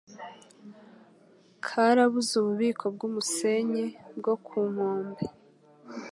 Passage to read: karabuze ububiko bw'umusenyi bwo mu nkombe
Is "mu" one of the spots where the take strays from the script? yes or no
yes